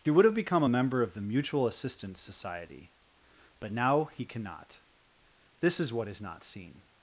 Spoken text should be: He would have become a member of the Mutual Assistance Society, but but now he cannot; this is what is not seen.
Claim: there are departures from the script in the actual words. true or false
true